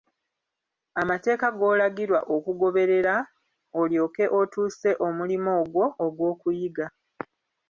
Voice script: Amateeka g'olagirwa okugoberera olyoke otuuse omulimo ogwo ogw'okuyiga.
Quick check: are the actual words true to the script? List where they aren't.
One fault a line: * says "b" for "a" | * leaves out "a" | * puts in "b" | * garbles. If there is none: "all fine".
all fine